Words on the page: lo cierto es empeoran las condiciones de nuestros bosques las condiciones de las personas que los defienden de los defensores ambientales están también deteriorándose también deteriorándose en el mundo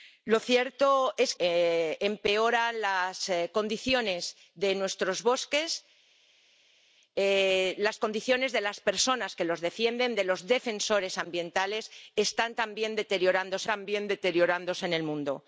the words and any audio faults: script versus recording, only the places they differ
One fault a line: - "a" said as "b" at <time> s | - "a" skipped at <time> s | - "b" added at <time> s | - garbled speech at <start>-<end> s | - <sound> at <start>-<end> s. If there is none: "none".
none